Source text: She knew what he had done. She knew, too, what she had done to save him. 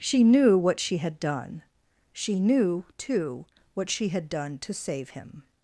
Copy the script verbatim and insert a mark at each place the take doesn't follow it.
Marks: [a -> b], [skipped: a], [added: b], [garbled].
She knew what [he -> she] had done. She knew, too, what she had done to save him.